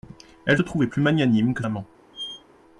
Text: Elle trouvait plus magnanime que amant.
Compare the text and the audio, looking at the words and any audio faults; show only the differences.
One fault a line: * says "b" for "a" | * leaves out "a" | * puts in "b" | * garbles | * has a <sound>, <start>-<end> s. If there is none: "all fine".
* has a squeak, 2.1-2.4 s